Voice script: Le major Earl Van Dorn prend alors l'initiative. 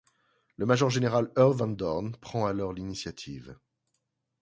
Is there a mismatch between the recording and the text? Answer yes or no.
yes